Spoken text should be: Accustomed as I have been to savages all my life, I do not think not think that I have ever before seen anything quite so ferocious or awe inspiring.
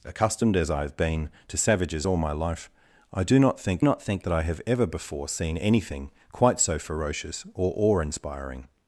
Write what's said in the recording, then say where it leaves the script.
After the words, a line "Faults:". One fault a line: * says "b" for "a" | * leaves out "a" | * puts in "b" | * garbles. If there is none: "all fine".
Accustomed as I have been to savages all my life, I do not think not think that I have ever before seen anything quite so ferocious or awe inspiring.
Faults:
all fine